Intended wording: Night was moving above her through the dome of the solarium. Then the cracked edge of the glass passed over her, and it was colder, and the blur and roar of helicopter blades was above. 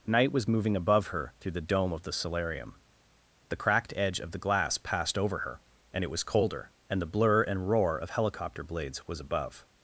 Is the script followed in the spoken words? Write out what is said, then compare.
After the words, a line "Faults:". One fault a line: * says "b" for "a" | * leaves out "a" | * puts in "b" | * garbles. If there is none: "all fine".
Night was moving above her through the dome of the solarium. The cracked edge of the glass passed over her, and it was colder, and the blur and roar of helicopter blades was above.
Faults:
* leaves out "Then"